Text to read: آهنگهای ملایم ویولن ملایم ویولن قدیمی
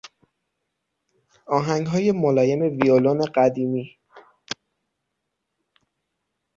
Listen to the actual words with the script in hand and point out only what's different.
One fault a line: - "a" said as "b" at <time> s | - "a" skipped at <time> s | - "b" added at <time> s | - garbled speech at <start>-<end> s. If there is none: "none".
- "ملایم ویولن" skipped at 3.2 s